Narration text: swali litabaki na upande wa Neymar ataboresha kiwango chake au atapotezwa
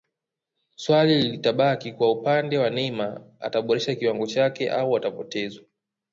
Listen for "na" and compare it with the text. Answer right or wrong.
wrong